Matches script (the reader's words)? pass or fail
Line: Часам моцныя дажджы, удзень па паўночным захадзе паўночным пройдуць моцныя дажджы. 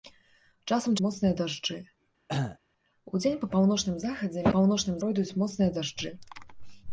pass